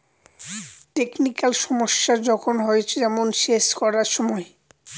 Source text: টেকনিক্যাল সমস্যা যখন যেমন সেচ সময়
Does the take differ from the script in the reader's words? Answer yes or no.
yes